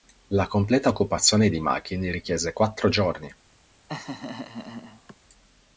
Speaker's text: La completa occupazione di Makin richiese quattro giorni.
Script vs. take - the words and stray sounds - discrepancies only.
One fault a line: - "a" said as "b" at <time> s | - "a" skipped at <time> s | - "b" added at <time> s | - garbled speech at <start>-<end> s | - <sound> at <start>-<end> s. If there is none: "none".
- laugh at 3.9-5.2 s